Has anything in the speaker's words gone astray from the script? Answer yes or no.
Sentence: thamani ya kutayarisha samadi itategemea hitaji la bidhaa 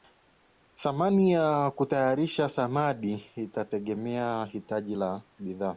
no